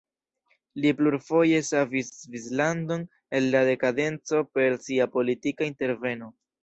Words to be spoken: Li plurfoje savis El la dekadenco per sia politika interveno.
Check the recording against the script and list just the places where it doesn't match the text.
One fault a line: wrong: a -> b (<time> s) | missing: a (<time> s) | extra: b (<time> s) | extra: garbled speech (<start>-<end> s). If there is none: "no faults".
extra: Svislandon (2.2 s)